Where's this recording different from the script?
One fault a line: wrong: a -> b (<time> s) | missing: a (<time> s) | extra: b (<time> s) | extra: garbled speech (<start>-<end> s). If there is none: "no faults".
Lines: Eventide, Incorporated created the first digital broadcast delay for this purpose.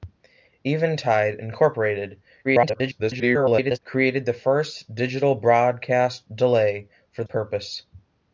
extra: garbled speech (2.4-3.8 s)
missing: this (7.2 s)